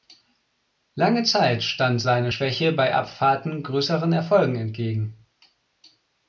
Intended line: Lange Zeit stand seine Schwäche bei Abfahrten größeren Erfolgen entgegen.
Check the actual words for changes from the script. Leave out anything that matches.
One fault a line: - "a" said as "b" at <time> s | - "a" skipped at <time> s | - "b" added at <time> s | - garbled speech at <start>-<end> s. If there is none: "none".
none